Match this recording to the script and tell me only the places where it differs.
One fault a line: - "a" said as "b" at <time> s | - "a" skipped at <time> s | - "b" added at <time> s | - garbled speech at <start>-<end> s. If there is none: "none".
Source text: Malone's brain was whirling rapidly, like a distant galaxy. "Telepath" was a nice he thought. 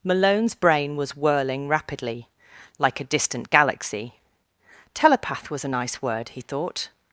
- "word" added at 6.0 s